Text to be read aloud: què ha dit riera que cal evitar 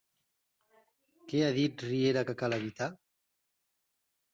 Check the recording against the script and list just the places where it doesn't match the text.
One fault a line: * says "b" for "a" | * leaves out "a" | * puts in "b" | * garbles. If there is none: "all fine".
all fine